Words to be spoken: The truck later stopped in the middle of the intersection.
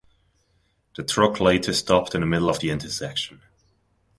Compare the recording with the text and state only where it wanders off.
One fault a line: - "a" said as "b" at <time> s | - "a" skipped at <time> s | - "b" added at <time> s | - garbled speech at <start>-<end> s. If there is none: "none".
none